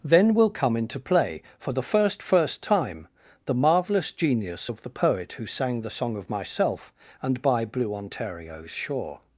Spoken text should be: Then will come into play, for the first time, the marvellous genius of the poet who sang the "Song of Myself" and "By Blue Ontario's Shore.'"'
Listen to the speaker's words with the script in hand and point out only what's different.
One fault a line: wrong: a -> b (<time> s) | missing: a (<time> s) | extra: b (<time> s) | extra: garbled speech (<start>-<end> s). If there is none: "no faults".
extra: first (2.2 s)